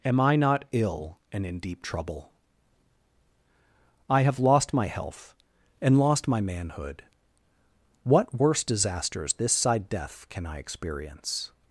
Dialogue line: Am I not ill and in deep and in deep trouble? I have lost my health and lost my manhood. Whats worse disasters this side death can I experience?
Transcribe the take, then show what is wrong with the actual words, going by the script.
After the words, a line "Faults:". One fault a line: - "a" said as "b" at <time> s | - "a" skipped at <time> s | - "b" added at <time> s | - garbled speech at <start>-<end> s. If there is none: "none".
Am I not ill and in deep trouble? I have lost my health and lost my manhood. What worse disasters this side death can I experience?
Faults:
- "and in deep" skipped at 1.8 s
- "Whats" said as "What" at 8.0 s